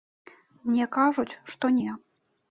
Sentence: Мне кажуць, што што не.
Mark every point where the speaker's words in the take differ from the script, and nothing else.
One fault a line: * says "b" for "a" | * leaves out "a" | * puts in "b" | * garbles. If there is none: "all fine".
* leaves out "што"